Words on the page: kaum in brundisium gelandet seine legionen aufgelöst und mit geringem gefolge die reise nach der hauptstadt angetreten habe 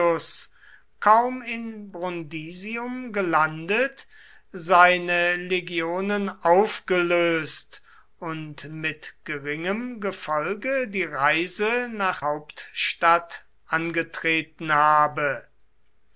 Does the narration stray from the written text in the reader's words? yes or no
yes